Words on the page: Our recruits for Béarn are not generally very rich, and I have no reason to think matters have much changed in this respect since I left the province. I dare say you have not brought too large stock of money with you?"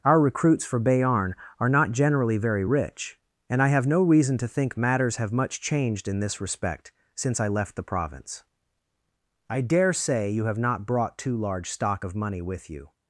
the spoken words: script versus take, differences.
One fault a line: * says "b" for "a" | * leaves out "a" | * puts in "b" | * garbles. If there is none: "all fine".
all fine